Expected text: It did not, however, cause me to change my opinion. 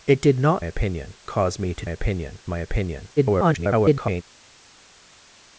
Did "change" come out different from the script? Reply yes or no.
yes